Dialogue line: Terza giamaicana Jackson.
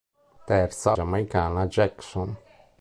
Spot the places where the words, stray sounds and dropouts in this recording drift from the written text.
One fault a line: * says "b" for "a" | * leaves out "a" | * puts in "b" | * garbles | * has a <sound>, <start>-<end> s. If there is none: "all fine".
all fine